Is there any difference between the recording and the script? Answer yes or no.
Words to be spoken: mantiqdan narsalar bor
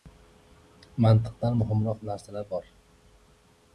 yes